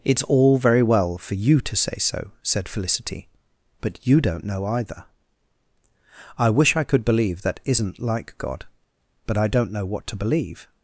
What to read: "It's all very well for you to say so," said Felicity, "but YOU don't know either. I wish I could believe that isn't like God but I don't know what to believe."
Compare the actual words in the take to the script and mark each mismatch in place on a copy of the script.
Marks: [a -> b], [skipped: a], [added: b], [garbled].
"It's all very well for you to say so," said Felicity, "but YOU don't know either. I wish I could believe that isn't like God but I don't know what to believe."